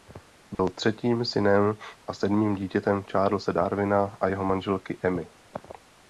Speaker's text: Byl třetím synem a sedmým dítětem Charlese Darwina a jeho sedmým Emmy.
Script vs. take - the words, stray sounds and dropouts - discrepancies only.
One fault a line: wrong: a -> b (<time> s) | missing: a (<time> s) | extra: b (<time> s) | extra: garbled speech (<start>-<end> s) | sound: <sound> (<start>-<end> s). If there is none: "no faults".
sound: dropout (0.5-0.6 s)
wrong: sedmým -> manželky (4.4 s)